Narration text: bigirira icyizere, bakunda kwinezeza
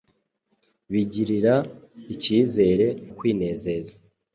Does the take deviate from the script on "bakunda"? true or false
true